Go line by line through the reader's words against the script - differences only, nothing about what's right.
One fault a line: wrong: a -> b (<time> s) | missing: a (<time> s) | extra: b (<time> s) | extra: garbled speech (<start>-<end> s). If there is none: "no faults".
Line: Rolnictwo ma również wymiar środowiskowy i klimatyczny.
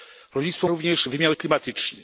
missing: ma (0.7 s)
missing: środowiskowy (1.4 s)